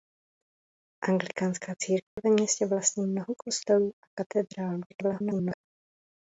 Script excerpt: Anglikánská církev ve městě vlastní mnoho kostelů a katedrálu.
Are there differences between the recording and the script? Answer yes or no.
yes